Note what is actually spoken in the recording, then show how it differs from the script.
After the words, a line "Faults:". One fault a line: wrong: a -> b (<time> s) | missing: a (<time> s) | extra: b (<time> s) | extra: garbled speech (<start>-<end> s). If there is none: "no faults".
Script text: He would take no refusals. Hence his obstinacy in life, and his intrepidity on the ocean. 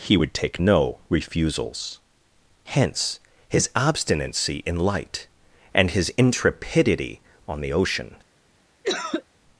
He would take no refusals. Hence his obstinacy in light, and his intrepidity on the ocean.
Faults:
wrong: life -> light (4.8 s)